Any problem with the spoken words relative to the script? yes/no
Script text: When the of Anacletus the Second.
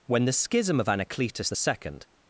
yes